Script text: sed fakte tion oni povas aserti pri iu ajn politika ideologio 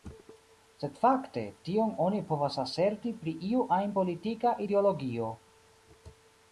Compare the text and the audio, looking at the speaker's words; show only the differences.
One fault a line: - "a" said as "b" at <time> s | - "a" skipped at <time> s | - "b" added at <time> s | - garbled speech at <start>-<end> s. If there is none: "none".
none